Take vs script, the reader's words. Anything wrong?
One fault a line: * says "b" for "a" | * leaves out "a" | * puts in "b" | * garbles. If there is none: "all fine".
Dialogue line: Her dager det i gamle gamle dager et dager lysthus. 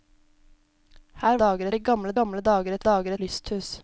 all fine